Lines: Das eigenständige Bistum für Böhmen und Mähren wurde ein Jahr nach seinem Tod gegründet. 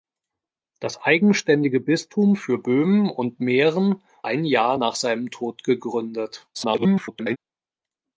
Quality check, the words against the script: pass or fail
fail